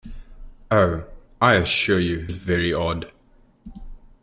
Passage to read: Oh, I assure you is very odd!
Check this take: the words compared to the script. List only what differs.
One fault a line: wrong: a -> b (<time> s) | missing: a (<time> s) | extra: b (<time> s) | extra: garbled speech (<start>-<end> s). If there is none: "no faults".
no faults